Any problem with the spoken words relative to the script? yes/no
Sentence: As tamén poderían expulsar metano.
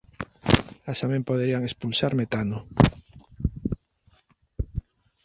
no